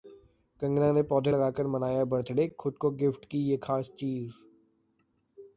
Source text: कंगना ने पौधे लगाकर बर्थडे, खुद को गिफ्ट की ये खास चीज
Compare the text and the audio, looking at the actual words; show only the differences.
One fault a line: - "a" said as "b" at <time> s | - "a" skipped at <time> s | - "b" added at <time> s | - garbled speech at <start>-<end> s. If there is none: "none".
- "मनाया" added at 1.7 s